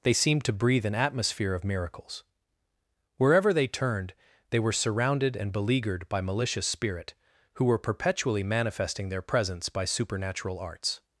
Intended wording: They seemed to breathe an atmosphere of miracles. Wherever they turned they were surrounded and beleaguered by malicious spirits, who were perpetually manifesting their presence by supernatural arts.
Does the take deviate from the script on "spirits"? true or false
true